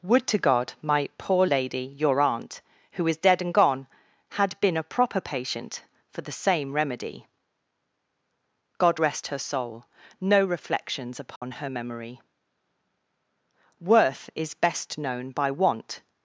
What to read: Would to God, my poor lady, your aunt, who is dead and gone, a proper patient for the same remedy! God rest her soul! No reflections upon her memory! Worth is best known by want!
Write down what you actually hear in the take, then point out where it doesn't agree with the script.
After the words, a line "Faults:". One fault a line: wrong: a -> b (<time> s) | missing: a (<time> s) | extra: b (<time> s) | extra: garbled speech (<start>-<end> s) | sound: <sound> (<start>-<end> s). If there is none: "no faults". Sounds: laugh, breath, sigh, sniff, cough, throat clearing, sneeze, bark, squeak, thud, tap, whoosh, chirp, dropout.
Would to God, my poor lady, your aunt, who is dead and gone, had been a proper patient for the same remedy! God rest her soul! No reflections upon her memory! Worth is best known by want!
Faults:
extra: had been (4.3 s)
sound: dropout (11.4-11.4 s)